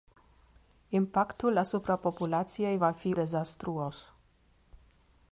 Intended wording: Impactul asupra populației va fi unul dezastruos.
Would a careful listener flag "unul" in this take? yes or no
yes